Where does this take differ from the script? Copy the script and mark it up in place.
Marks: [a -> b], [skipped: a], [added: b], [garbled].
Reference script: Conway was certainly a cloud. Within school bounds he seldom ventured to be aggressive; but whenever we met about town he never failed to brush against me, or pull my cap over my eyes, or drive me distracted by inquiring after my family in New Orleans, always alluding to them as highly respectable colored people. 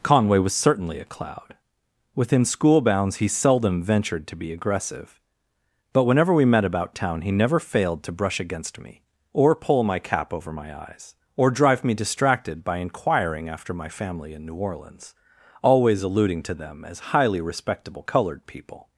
Conway was certainly a cloud. Within school bounds he seldom ventured to be aggressive; but whenever we met about town he never failed to brush against me, or pull my cap over my eyes, or drive me distracted by inquiring after my family in New Orleans, always alluding to them as highly respectable colored people.